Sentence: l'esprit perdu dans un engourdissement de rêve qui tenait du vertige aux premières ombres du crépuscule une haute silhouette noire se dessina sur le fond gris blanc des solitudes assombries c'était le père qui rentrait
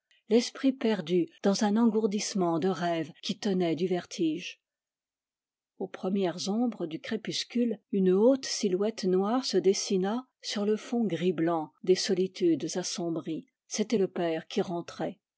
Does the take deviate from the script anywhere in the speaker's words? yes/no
no